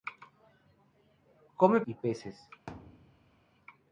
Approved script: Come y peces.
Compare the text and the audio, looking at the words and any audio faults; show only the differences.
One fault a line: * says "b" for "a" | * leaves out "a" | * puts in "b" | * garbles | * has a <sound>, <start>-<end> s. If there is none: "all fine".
* has a thud, 2.7-3.5 s